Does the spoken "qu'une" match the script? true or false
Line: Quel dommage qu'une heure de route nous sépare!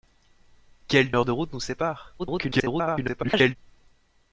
false